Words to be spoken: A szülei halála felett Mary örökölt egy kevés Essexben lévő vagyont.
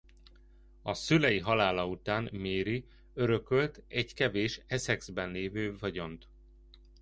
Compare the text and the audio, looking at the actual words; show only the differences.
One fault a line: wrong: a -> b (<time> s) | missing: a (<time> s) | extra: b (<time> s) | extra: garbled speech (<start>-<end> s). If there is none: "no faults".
wrong: felett -> után (1.9 s)